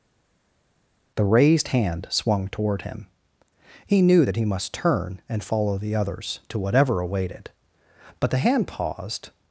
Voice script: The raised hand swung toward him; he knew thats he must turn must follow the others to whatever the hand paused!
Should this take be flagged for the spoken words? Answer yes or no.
yes